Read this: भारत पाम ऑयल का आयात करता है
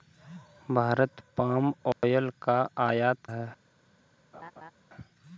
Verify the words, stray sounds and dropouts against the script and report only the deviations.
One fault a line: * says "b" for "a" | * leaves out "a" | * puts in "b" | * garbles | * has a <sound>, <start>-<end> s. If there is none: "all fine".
* has a dropout, 1.9-2.0 s
* leaves out "करता"
* has a laugh, 4.3-4.7 s